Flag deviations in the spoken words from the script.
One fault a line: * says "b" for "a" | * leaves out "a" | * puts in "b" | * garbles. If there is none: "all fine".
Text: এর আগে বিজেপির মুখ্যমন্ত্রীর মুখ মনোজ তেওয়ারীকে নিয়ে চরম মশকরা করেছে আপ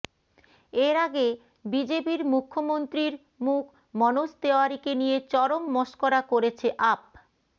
all fine